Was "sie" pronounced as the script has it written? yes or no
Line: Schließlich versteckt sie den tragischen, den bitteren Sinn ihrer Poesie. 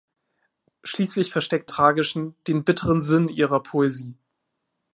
no